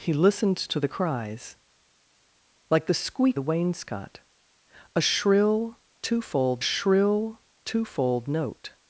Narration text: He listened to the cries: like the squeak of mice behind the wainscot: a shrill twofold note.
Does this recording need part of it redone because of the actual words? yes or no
yes